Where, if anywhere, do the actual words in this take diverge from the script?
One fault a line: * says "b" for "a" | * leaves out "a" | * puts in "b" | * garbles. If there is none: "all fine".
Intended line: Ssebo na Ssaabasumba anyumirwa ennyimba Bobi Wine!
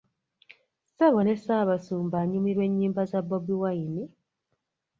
* says "ne" for "na"
* puts in "za"